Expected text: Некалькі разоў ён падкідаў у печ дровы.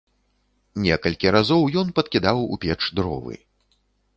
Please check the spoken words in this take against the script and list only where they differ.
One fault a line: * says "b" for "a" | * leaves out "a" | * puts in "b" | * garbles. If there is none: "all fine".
all fine